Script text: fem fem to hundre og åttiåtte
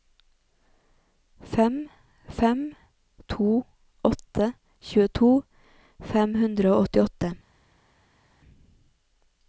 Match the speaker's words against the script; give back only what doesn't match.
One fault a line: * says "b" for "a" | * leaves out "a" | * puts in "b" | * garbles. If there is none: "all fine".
* puts in "åtte tjueto fem"